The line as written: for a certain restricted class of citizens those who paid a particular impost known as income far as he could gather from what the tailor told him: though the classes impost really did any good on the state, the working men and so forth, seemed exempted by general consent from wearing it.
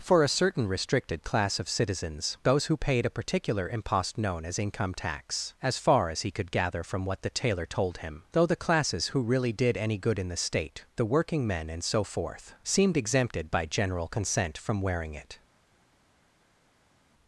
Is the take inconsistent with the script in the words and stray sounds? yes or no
yes